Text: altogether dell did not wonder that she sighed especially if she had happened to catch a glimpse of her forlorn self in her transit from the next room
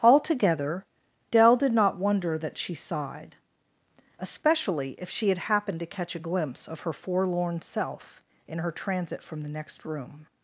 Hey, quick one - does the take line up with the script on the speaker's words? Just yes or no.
yes